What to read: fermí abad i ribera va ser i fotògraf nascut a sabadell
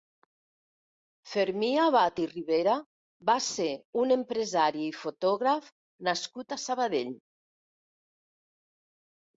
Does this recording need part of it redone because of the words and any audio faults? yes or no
yes